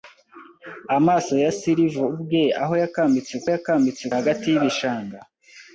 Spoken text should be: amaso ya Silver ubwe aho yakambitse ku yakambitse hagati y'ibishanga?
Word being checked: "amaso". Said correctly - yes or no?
yes